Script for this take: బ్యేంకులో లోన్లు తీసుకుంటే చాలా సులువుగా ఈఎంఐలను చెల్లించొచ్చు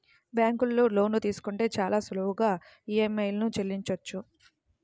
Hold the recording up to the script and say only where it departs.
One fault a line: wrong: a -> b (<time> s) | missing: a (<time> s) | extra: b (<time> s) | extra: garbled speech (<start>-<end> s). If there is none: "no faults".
no faults